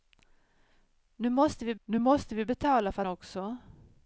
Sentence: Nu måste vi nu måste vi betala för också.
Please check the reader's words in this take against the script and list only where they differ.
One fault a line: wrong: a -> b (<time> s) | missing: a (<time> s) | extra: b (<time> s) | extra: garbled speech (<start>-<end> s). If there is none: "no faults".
no faults